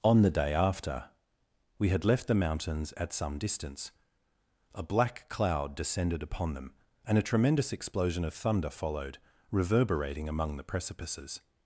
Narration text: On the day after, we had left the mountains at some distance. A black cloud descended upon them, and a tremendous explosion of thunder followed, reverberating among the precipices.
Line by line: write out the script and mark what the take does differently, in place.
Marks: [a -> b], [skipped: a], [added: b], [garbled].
On the day after, we had left the mountains at some distance. A black cloud descended upon them, and a tremendous explosion of thunder followed, reverberating among the precipices.